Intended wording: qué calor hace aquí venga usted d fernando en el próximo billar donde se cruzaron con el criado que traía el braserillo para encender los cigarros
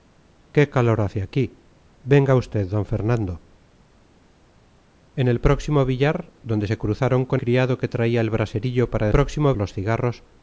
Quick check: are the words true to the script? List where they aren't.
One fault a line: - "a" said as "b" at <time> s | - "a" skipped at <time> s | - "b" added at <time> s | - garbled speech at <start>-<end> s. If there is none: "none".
- "el" skipped at 7.4 s
- "encender" said as "próximo" at 9.1 s